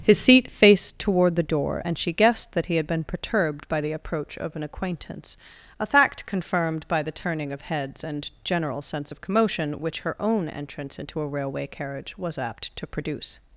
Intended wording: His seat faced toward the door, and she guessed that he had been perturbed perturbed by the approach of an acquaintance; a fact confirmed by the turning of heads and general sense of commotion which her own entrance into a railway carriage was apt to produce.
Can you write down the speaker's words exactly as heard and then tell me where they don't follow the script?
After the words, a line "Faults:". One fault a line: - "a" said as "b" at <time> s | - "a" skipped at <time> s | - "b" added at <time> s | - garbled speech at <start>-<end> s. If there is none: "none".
His seat faced toward the door, and she guessed that he had been perturbed by the approach of an acquaintance; a fact confirmed by the turning of heads and general sense of commotion which her own entrance into a railway carriage was apt to produce.
Faults:
- "perturbed" skipped at 3.7 s